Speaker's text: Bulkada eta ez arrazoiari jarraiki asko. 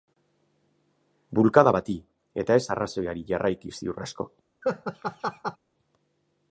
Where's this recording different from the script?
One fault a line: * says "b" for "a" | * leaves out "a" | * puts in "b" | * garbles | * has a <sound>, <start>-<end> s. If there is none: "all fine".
* puts in "bati"
* puts in "ziur"
* has a laugh, 4.6-5.6 s